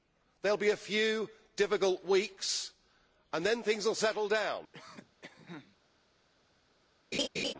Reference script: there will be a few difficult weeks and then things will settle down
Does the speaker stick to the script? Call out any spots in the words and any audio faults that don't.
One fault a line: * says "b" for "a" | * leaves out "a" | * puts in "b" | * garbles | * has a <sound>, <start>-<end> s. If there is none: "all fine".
* has a cough, 4.7-5.8 s
* has a laugh, 7.1-7.5 s